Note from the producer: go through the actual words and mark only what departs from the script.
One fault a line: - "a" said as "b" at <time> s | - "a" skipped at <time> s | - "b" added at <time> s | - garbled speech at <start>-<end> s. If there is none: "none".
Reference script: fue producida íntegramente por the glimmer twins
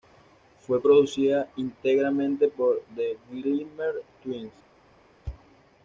none